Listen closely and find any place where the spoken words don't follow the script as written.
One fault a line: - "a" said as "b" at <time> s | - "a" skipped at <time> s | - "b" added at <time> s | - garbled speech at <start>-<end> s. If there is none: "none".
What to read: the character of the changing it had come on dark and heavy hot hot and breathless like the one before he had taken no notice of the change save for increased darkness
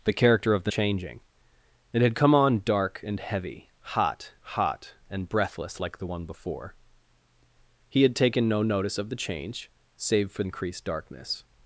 none